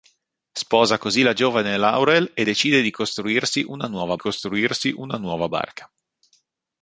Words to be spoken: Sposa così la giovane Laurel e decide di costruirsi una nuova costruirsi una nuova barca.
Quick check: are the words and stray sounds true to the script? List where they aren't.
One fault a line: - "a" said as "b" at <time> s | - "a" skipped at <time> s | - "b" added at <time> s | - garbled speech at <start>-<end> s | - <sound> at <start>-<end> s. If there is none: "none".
none